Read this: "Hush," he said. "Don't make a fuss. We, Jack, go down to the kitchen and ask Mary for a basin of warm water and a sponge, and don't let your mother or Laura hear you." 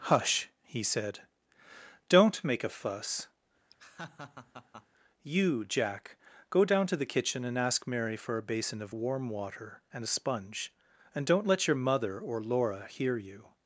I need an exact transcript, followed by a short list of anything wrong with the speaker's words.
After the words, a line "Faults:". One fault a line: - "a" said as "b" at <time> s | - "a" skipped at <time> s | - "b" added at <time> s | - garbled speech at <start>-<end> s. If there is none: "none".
"Hush," he said. "Don't make a fuss. You, Jack, go down to the kitchen and ask Mary for a basin of warm water and a sponge, and don't let your mother or Laura hear you."
Faults:
- "We" said as "You" at 5.2 s